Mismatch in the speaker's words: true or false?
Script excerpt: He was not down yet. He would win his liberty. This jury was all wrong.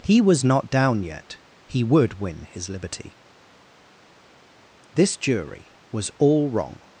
false